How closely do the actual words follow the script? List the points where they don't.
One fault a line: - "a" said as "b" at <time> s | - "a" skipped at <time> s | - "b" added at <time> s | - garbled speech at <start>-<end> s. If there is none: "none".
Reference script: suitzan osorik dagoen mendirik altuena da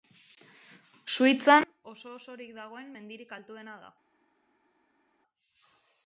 - "oso" added at 1.9 s